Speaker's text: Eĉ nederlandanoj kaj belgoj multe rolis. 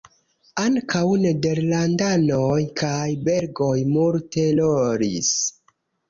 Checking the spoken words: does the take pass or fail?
fail